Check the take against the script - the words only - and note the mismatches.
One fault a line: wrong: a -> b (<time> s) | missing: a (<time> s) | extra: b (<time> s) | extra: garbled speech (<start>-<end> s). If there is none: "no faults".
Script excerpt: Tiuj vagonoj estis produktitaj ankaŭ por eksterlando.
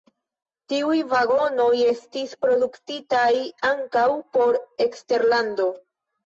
no faults